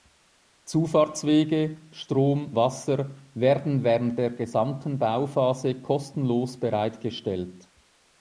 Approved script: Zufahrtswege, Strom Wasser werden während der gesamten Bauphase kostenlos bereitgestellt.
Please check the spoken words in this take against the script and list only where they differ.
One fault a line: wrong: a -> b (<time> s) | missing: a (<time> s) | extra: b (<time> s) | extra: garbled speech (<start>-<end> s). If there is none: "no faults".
no faults